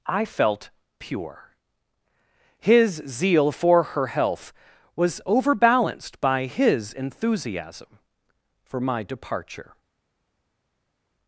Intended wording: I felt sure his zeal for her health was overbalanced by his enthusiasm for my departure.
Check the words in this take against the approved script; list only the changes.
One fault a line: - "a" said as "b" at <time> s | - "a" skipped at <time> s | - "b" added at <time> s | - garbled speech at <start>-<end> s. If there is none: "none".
- "sure" said as "pure" at 1.0 s